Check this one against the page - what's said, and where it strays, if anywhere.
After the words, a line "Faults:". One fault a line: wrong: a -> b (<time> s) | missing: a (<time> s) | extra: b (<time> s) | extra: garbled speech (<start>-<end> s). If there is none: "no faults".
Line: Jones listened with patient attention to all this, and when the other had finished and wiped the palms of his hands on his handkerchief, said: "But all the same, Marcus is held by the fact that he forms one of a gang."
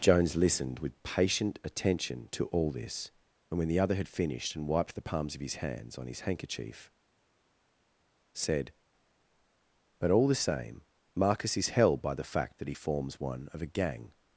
Jones listened with patient attention to all this, and when the other had finished and wiped the palms of his hands on his handkerchief, said: "But all the same, Marcus is held by the fact that he forms one of a gang."
Faults:
no faults